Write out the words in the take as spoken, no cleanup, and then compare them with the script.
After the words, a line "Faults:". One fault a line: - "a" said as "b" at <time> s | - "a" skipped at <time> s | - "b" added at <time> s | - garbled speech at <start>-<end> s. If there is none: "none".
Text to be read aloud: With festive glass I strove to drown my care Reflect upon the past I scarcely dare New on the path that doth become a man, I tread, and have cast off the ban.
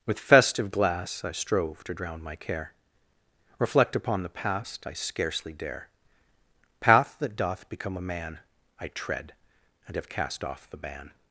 With festive glass I strove to drown my care Reflect upon the past I scarcely dare path that doth become a man, I tread, and have cast off the ban.
Faults:
- "New on the" skipped at 5.9 s